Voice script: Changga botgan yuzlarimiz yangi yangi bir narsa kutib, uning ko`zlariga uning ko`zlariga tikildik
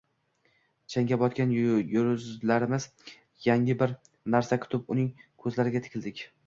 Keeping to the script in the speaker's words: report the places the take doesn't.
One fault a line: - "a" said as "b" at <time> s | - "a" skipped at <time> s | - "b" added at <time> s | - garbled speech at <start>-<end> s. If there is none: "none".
- "yangi" skipped at 3.8 s
- "uning ko`zlariga" skipped at 5.9 s